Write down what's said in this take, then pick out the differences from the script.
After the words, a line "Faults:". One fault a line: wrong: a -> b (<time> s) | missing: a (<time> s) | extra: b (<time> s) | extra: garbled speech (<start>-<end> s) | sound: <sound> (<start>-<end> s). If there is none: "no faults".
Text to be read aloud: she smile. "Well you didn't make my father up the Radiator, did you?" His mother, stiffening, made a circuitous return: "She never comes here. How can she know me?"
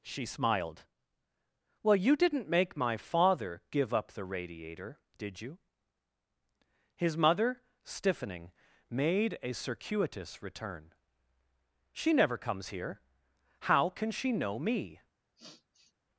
she smiled. "Well you didn't make my father give up the Radiator, did you?" His mother, stiffening, made a circuitous return: "She never comes here. How can she know me?"
Faults:
wrong: smile -> smiled (0.2 s)
extra: give (3.7 s)
sound: sniff (15.4-15.9 s)